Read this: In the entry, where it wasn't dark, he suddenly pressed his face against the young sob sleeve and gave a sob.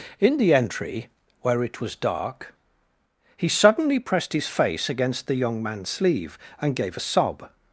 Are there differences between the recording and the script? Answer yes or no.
yes